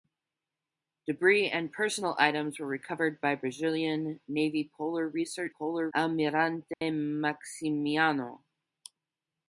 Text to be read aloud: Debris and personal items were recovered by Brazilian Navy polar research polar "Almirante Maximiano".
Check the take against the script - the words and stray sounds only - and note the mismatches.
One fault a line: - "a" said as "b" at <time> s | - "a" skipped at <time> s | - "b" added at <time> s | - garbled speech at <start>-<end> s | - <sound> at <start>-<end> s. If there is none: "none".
- dropout at 6.7-6.8 s